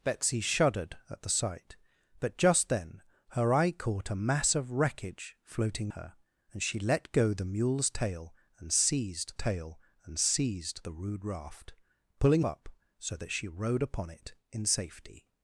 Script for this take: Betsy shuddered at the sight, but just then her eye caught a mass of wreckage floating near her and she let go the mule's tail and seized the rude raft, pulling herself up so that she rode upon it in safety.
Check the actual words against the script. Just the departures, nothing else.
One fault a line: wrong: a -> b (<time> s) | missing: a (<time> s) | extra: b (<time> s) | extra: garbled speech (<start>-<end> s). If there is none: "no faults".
missing: near (5.9 s)
extra: tail and seized (9.3 s)
missing: herself (12.4 s)